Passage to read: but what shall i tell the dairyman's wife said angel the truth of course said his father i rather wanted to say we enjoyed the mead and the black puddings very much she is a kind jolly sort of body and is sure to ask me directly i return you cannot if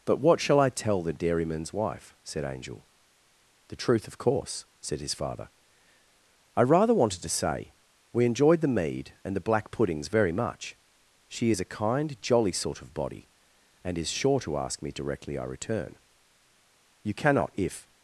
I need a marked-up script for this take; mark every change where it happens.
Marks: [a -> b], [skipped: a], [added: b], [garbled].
but what shall i tell the dairyman's wife said angel the truth of course said his father i rather wanted to say we enjoyed the mead and the black puddings very much she is a kind jolly sort of body and is sure to ask me directly i return you cannot if